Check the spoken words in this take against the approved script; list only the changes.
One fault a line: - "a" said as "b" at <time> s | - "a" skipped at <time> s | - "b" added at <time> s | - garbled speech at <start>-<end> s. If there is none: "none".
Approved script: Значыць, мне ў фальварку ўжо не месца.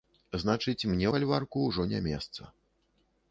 - "ў" skipped at 1.1 s